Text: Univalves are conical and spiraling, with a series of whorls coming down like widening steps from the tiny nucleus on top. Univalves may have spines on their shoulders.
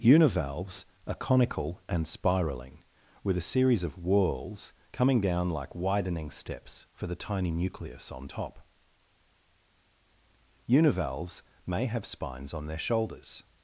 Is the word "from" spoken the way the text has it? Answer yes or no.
no